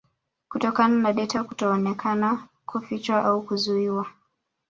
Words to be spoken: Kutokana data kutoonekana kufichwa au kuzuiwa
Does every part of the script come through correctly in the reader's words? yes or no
no